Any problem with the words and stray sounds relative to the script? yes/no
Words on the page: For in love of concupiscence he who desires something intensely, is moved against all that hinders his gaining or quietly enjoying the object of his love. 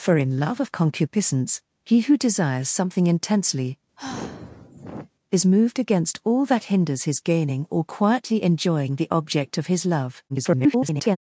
yes